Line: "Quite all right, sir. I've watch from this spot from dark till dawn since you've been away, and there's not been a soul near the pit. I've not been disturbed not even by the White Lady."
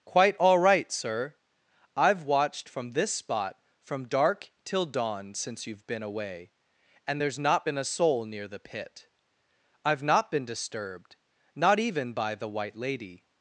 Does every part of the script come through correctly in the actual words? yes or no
no